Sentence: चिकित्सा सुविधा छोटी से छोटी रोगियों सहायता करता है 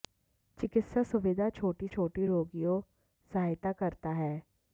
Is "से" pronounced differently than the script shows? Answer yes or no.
yes